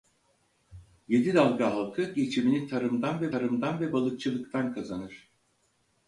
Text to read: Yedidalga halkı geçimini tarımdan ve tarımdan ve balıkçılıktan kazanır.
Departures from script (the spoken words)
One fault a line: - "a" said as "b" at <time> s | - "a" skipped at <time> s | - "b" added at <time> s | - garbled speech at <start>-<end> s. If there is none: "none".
none